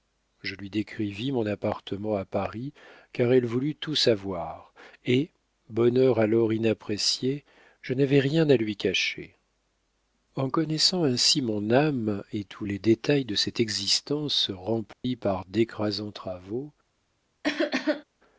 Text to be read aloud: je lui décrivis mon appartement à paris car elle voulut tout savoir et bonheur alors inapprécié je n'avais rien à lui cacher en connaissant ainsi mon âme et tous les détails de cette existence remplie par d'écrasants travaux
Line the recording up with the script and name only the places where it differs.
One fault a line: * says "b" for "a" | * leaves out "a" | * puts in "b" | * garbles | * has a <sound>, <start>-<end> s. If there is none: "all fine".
* has a dropout, 14.9-15.0 s
* has a cough, 17.4-18.0 s